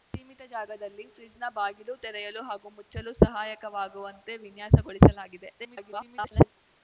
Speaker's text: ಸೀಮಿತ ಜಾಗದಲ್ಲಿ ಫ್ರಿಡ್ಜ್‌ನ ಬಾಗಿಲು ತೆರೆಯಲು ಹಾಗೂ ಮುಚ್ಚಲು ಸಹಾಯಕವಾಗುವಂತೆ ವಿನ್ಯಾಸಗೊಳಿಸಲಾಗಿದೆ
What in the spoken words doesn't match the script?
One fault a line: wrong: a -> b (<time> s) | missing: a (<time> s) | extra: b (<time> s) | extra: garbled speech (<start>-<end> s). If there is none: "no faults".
extra: garbled speech (5.6-6.5 s)